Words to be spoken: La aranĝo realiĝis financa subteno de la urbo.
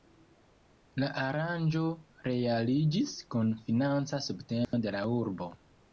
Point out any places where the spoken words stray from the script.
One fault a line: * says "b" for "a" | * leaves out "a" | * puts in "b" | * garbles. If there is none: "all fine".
* puts in "kun"